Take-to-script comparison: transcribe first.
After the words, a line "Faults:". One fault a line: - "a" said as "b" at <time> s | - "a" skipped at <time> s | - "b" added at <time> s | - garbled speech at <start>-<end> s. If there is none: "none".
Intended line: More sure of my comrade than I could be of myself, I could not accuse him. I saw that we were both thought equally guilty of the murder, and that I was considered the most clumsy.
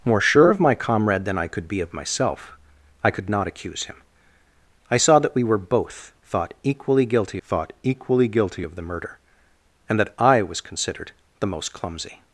More sure of my comrade than I could be of myself, I could not accuse him. I saw that we were both thought equally guilty thought equally guilty of the murder, and that I was considered the most clumsy.
Faults:
- "thought equally guilty" added at 7.4 s